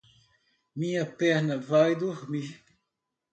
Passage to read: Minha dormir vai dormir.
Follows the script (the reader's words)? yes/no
no